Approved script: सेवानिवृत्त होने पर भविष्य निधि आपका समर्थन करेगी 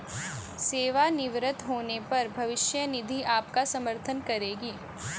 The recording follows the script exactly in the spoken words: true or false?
true